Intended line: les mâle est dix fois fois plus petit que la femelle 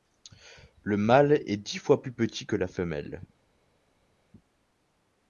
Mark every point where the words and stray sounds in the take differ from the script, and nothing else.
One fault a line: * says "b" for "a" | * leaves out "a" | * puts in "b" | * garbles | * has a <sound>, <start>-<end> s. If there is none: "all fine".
* says "le" for "les"
* leaves out "fois"